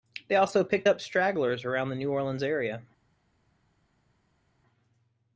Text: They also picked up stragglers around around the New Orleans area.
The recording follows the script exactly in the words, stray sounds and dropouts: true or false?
false